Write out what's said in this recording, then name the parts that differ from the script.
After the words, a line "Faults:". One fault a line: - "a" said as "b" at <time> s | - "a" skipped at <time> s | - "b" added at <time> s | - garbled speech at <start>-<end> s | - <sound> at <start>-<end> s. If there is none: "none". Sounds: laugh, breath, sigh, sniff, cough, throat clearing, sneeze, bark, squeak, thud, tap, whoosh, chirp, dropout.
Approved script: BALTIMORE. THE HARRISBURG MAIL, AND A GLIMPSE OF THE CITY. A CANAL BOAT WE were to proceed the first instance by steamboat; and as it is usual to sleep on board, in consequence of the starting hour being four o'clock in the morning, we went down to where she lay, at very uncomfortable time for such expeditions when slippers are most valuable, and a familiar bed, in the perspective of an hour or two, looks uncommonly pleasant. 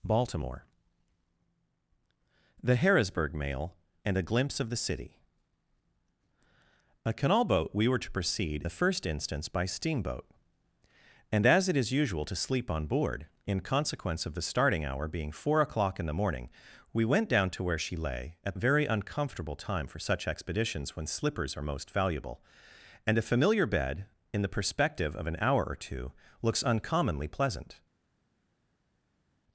BALTIMORE. THE HARRISBURG MAIL, AND A GLIMPSE OF THE CITY. A CANAL BOAT WE were to proceed the first instance by steamboat; and as it is usual to sleep on board, in consequence of the starting hour being four o'clock in the morning, we went down to where she lay, at very uncomfortable time for such expeditions when slippers are most valuable, and a familiar bed, in the perspective of an hour or two, looks uncommonly pleasant.
Faults:
none